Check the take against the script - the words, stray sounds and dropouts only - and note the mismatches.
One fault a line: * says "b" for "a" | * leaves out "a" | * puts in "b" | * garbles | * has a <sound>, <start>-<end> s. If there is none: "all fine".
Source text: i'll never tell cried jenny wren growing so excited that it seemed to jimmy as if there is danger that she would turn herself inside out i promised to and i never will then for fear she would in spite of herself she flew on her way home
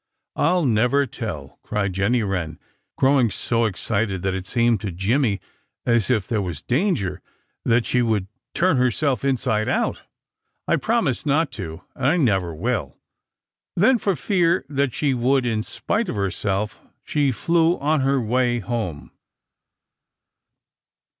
* says "was" for "is"
* puts in "not"
* puts in "that"